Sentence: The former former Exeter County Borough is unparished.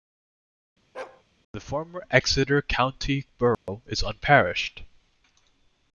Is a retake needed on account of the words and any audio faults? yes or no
yes